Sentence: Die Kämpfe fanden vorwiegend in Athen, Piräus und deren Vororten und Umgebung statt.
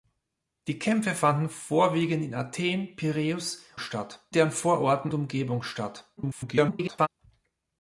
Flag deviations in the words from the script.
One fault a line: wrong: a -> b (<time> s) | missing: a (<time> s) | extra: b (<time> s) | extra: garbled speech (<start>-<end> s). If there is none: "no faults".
wrong: und -> statt (3.8 s)
missing: und (5.1 s)
extra: garbled speech (6.2-7.1 s)